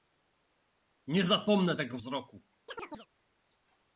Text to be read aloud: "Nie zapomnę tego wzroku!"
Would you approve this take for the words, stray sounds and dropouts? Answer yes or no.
no